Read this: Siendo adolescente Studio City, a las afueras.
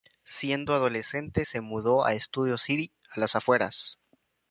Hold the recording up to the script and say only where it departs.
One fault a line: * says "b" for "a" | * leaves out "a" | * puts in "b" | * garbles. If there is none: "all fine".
* puts in "se mudó a"